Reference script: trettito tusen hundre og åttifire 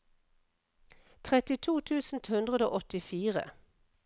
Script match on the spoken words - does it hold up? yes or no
yes